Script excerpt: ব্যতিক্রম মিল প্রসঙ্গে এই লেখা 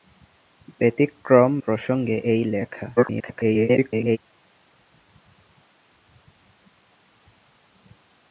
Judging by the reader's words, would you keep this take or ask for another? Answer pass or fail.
fail